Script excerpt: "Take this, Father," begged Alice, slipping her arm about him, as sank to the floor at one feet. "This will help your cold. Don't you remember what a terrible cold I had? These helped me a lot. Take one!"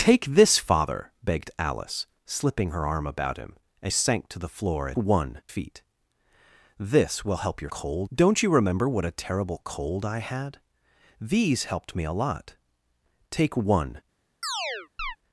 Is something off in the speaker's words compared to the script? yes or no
no